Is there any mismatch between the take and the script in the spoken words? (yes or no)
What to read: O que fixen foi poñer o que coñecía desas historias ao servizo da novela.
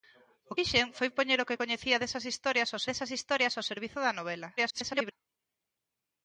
yes